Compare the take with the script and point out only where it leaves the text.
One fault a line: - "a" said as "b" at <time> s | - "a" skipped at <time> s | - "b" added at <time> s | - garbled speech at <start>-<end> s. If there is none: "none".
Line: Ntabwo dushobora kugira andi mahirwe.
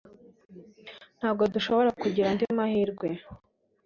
none